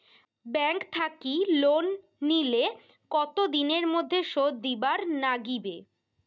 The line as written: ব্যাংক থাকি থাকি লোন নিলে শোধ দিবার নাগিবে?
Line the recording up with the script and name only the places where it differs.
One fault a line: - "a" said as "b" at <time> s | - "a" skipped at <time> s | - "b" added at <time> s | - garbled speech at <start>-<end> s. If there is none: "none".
- "থাকি" skipped at 1.3 s
- "কতো দিনের মধ্যে" added at 3.1 s